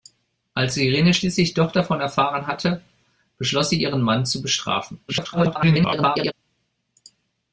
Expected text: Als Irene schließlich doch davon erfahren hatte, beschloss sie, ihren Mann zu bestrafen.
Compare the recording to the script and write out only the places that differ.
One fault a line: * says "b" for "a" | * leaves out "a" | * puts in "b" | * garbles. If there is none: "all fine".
* garbles